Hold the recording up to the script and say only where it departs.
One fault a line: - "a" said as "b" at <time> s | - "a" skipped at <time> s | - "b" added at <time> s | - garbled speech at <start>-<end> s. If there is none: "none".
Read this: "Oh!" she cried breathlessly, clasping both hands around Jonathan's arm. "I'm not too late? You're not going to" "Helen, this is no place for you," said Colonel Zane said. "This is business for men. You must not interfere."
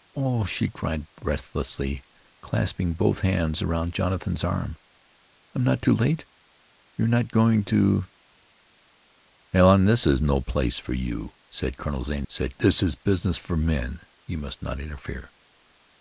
none